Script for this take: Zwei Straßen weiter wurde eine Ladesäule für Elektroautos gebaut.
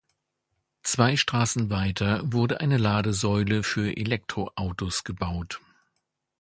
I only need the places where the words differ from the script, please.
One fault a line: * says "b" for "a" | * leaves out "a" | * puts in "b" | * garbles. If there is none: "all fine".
all fine